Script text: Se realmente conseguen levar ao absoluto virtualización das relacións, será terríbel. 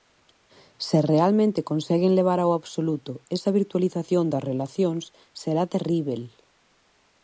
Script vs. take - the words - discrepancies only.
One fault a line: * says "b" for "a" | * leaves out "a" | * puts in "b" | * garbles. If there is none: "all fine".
* puts in "esa"